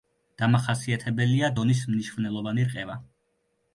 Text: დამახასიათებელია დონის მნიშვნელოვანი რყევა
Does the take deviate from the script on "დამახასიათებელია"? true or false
false